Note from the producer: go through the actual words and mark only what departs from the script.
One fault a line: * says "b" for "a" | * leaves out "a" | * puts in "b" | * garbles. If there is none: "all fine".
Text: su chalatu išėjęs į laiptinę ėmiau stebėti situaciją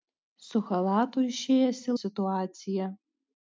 * leaves out "laiptinę ėmiau stebėti"